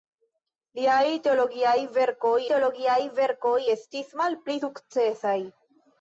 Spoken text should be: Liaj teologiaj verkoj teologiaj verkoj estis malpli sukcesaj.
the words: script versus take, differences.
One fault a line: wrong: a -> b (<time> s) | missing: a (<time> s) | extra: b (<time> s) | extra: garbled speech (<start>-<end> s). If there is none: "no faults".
no faults